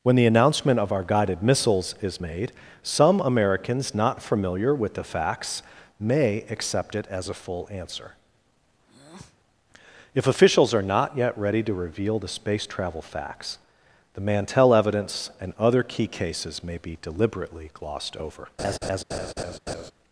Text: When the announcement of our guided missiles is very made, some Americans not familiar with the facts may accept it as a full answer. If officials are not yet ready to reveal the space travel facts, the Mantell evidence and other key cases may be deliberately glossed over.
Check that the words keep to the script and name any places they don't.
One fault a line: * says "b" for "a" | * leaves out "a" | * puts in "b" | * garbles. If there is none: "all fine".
* leaves out "very"